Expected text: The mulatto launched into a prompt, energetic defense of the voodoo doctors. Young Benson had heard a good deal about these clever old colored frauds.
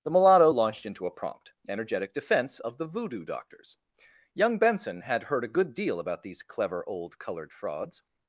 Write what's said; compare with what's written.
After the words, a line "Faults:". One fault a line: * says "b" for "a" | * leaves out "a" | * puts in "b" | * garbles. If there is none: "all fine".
The mulatto launched into a prompt, energetic defense of the voodoo doctors. Young Benson had heard a good deal about these clever old colored frauds.
Faults:
all fine